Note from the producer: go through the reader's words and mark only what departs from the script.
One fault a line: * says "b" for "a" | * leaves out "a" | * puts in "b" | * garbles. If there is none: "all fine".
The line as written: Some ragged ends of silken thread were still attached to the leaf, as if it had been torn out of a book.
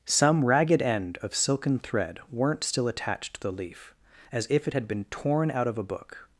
* says "end" for "ends"
* says "weren't" for "were"